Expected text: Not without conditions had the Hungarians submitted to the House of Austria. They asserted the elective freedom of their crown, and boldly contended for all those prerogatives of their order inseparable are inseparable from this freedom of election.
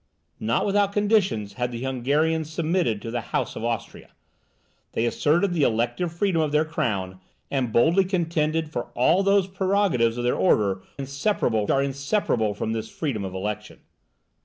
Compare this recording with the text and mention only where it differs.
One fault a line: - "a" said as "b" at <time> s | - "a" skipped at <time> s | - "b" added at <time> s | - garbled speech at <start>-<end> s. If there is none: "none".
none